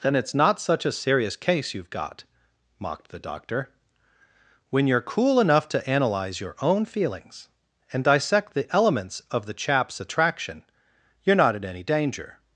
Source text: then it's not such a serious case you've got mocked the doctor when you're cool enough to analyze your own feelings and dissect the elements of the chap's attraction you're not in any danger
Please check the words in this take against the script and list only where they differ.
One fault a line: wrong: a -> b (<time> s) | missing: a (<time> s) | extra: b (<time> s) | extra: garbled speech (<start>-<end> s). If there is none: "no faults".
no faults